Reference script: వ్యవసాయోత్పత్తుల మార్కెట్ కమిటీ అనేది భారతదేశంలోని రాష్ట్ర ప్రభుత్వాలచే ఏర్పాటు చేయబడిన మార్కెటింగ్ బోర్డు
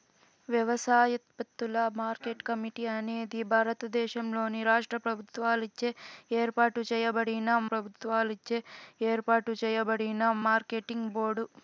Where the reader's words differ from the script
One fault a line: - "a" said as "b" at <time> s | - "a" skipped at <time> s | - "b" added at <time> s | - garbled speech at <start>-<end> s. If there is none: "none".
- "ప్రభుత్వాలచే ఏర్పాటు చేయబడిన" added at 7.7 s